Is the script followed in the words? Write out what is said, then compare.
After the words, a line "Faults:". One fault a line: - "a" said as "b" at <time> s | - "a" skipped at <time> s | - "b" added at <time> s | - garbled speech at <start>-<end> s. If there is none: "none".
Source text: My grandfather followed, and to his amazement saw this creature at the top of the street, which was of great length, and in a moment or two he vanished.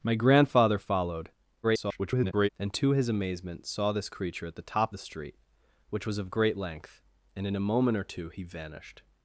My grandfather followed, [garbled] and to his amazement saw this creature at the top the street, which was of great length, and in a moment or two he vanished.
Faults:
- garbled speech at 1.6-2.5 s
- "of" skipped at 4.9 s